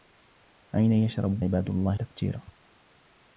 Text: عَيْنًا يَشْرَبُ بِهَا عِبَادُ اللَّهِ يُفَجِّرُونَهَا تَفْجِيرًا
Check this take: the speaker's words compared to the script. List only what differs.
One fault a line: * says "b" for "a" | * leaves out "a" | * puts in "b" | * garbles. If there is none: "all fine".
* leaves out "بِهَا"
* leaves out "يُفَجِّرُونَهَا"